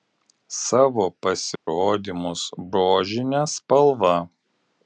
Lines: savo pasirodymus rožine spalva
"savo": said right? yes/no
yes